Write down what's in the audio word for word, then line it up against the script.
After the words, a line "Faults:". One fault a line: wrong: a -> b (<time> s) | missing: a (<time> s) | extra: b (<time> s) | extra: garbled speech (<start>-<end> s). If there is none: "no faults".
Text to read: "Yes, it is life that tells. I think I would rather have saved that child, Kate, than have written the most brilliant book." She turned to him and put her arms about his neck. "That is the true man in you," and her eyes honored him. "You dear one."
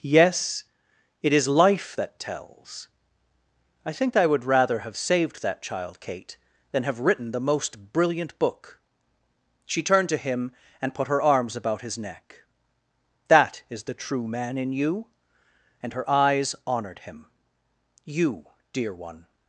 "Yes, it is life that tells. I think I would rather have saved that child, Kate, than have written the most brilliant book." She turned to him and put her arms about his neck. "That is the true man in you," and her eyes honored him. "You dear one."
Faults:
no faults